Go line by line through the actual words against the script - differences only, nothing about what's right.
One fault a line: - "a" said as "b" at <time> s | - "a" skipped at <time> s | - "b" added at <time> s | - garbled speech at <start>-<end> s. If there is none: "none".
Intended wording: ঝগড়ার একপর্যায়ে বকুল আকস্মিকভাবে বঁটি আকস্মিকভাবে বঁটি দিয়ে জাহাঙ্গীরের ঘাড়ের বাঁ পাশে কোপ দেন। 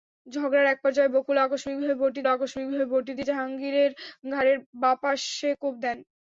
none